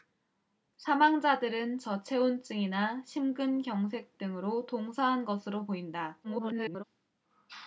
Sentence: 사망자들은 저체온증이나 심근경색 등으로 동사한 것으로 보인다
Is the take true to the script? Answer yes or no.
no